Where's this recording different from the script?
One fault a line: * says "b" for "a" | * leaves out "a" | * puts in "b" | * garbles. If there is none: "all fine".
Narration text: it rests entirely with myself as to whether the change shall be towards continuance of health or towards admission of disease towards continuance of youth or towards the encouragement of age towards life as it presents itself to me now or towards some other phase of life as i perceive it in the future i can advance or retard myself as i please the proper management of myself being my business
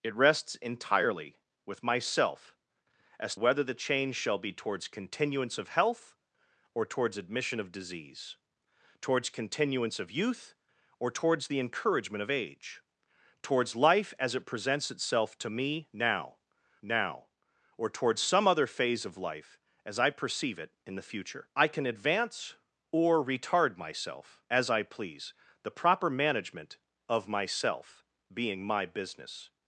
* leaves out "to"
* puts in "now"